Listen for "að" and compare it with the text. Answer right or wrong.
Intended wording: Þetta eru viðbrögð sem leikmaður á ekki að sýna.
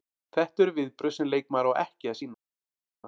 right